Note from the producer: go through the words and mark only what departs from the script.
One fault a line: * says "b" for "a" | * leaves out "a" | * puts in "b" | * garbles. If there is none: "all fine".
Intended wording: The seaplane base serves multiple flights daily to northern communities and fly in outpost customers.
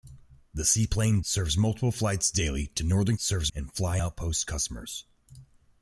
* leaves out "base"
* says "serves" for "communities"
* leaves out "in"